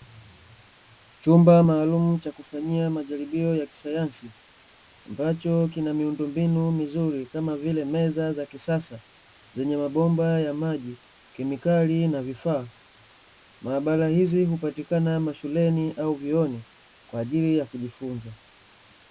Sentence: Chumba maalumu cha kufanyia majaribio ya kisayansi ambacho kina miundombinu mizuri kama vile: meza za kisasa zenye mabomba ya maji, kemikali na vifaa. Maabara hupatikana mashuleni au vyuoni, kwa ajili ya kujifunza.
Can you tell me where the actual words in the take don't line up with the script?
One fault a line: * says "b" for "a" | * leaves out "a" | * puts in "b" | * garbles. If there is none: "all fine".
* puts in "hizi"